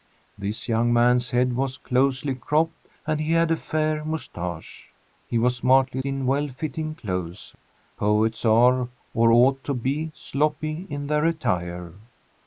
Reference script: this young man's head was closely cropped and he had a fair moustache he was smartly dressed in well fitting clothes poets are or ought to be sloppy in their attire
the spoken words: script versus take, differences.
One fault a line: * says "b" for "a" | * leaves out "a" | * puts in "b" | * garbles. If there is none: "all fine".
* leaves out "dressed"